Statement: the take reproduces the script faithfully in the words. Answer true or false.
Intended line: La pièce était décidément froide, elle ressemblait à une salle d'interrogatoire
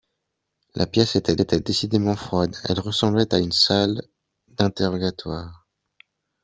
false